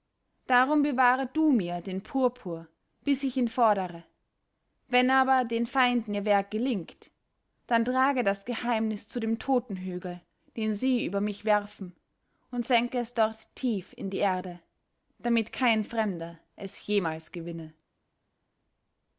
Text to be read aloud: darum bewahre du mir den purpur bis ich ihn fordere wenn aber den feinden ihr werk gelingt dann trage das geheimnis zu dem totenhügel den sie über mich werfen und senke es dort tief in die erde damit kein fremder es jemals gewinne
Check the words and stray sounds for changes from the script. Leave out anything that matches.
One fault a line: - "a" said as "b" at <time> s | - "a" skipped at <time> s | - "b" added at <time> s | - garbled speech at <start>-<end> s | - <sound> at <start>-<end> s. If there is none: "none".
none